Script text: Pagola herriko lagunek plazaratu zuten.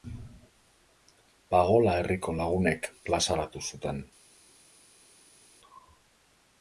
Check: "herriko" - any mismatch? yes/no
no